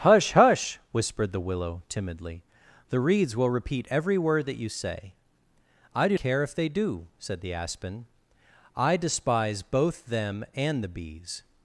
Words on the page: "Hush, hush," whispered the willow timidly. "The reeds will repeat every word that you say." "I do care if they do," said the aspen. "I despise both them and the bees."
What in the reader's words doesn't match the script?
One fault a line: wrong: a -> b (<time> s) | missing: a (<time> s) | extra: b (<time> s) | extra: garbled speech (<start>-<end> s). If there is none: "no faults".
no faults